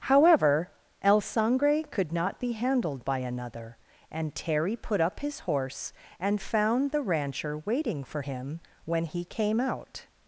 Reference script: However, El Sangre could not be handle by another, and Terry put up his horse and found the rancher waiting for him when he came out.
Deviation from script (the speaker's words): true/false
true